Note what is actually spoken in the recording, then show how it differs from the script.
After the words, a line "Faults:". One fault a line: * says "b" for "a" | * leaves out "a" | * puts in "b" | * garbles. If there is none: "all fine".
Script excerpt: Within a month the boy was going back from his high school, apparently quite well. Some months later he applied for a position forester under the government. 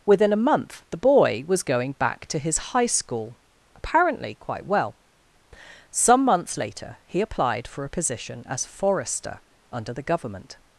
Within a month the boy was going back to his high school, apparently quite well. Some months later he applied for a position as forester under the government.
Faults:
* says "to" for "from"
* puts in "as"